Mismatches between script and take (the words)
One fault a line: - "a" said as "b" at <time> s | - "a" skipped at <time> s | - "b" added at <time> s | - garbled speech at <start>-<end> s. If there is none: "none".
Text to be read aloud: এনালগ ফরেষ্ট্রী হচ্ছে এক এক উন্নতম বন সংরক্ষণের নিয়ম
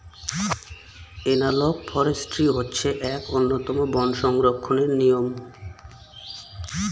- "এক" skipped at 3.2 s